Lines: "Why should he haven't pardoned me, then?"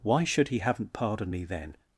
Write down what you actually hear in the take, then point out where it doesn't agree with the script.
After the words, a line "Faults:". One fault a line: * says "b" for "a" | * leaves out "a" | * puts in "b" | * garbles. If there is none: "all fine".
"Why should he haven't pardoned me, then?"
Faults:
all fine